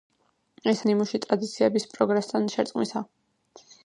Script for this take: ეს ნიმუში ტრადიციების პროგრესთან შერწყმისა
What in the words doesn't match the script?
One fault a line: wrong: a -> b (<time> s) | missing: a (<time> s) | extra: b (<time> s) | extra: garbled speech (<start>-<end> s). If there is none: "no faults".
no faults